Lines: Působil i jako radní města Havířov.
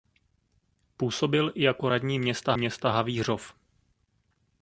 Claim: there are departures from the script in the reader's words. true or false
true